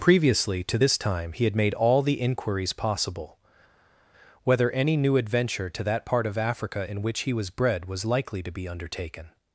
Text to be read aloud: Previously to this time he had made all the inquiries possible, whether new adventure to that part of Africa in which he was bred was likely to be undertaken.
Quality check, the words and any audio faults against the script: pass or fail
fail